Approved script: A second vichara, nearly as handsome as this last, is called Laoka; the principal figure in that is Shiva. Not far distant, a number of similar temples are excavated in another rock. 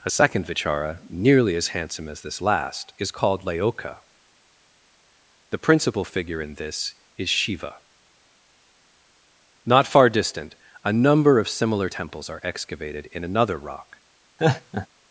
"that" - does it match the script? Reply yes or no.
no